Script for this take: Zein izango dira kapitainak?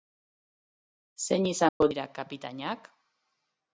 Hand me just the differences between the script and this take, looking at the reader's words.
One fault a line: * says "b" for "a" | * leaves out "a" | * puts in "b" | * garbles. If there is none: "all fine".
all fine